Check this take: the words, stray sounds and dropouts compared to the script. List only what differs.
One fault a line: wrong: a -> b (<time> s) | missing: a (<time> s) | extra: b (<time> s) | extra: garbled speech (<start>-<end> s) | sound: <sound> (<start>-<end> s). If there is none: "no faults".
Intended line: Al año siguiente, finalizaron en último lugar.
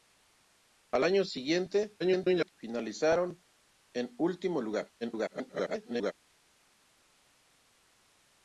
extra: garbled speech (2.0-2.5 s)
extra: garbled speech (5.0-6.1 s)